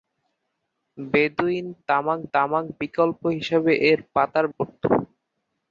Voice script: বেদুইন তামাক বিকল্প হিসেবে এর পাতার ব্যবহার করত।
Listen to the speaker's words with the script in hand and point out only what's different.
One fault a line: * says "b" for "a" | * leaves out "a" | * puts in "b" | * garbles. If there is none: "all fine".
* puts in "তামাক"
* leaves out "ব্যবহার"